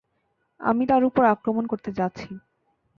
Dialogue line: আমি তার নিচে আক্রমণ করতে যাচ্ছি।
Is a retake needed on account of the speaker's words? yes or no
yes